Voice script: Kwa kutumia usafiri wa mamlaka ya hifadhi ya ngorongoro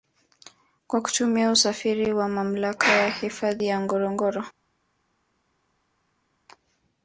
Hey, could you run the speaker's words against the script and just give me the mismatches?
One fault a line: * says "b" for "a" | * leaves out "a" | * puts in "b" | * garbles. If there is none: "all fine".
all fine